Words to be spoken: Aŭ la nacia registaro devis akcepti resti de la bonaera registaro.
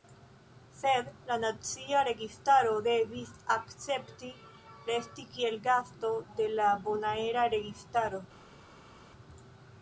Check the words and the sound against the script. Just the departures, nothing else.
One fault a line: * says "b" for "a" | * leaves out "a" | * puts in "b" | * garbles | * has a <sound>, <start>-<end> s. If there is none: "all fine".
* says "Sed" for "Aŭ"
* puts in "kiel gasto"